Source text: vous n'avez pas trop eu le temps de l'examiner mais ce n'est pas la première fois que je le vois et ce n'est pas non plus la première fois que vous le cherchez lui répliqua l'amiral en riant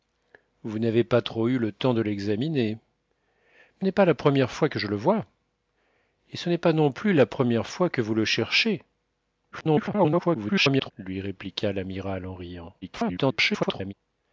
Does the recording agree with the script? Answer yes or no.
no